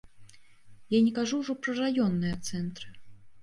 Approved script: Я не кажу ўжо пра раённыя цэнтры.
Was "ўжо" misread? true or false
false